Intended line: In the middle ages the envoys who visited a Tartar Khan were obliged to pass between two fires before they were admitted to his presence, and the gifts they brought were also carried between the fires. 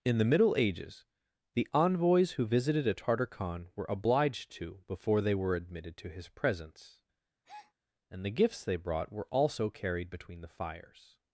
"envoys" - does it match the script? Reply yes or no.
yes